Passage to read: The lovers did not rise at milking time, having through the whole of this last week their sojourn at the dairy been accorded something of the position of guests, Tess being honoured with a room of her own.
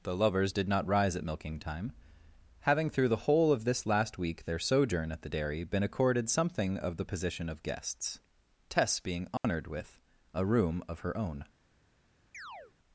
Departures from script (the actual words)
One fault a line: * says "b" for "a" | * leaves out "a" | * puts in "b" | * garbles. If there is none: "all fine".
all fine